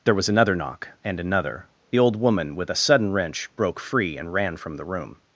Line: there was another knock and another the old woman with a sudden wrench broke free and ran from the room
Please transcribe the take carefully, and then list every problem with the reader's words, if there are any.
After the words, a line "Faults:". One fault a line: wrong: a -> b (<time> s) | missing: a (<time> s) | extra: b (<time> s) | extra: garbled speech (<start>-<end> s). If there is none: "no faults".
there was another knock and another the old woman with a sudden wrench broke free and ran from the room
Faults:
no faults